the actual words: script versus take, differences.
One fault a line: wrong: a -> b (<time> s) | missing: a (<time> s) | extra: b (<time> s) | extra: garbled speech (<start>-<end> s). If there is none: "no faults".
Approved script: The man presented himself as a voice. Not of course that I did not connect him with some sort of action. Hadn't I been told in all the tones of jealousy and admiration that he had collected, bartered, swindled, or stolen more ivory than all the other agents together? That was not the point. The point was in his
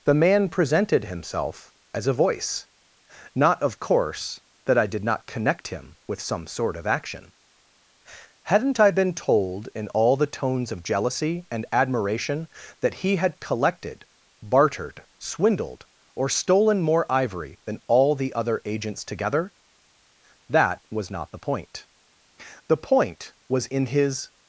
no faults